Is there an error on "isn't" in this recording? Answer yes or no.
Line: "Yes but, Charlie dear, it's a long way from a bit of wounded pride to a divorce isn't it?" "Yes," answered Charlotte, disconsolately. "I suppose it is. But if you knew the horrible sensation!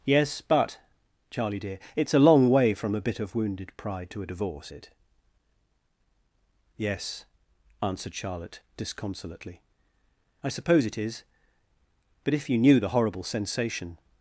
yes